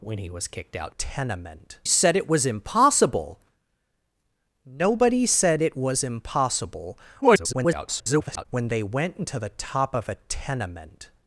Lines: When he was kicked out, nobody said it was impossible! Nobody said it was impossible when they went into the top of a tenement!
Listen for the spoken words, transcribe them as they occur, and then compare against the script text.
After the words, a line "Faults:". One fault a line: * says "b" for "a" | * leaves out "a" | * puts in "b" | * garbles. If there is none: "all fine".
When he was kicked out, tenement said it was impossible! Nobody said it was impossible [garbled] when they went into the top of a tenement!
Faults:
* says "tenement" for "nobody"
* garbles